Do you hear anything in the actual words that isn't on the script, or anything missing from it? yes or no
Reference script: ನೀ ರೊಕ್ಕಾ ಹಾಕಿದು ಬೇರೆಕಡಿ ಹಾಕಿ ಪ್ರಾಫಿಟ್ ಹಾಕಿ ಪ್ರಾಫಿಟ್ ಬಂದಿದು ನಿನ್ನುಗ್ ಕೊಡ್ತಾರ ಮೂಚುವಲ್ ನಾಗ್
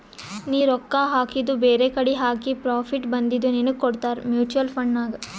yes